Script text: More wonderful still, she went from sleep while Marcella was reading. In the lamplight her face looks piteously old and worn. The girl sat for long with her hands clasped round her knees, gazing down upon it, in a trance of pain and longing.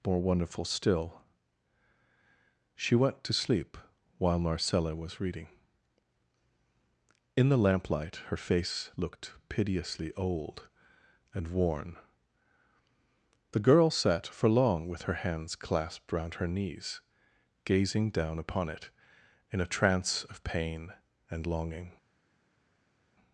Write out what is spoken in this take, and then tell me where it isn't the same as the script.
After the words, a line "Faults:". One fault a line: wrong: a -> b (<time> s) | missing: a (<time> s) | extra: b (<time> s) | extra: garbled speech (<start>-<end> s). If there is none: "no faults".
More wonderful still, she went to sleep while Marcella was reading. In the lamplight her face looked piteously old and worn. The girl sat for long with her hands clasped round her knees, gazing down upon it, in a trance of pain and longing.
Faults:
wrong: from -> to (3.2 s)
wrong: looks -> looked (9.0 s)